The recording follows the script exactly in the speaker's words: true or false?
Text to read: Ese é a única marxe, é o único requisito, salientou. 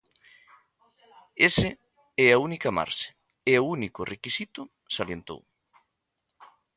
true